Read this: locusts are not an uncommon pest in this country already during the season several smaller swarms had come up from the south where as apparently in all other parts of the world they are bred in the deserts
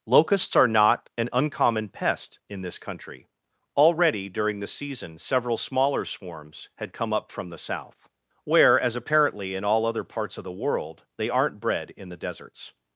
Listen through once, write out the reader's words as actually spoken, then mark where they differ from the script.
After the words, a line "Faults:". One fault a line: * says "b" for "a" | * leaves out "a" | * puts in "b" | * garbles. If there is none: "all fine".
locusts are not an uncommon pest in this country already during the season several smaller swarms had come up from the south where as apparently in all other parts of the world they aren't bred in the deserts
Faults:
* says "aren't" for "are"